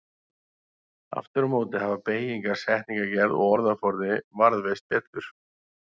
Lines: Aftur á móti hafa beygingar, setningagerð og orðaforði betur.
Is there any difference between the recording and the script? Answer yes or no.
yes